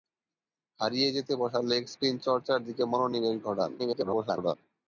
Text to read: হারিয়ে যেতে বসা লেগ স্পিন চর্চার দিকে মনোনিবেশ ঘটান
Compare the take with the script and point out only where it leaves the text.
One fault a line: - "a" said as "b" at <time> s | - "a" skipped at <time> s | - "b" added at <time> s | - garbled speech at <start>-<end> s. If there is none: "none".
- garbled speech at 3.8-4.6 s